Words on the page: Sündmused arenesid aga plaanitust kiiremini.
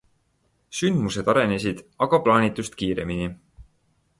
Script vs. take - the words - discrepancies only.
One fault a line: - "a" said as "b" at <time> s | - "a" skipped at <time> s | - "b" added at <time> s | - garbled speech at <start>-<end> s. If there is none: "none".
none